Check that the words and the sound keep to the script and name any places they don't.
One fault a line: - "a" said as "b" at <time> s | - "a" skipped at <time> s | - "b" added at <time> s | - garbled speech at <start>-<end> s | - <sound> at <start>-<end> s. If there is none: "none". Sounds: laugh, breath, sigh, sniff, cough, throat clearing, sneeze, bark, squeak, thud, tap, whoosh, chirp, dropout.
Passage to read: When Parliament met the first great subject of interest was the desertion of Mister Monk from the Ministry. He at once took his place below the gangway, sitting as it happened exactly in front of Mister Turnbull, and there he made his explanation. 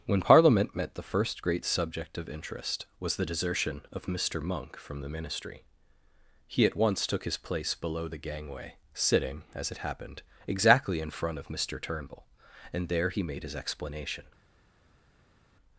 none